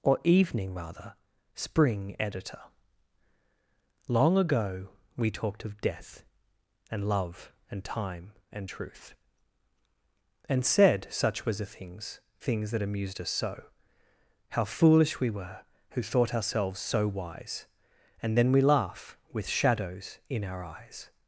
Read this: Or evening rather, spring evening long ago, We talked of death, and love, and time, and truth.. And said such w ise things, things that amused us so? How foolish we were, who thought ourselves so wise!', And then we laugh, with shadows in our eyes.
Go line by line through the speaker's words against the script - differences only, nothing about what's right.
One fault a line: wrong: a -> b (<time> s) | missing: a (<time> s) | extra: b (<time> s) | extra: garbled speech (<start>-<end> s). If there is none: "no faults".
wrong: evening -> editor (2.2 s)
wrong: w ise -> was the (11.4 s)